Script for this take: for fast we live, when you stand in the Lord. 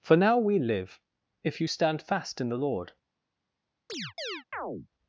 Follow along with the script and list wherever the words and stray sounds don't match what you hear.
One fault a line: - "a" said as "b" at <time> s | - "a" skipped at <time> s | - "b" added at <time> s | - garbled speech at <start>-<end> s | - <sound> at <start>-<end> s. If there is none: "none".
- "fast" said as "now" at 0.2 s
- "when" said as "if" at 1.4 s
- "fast" added at 2.0 s
- chirp at 3.9-4.9 s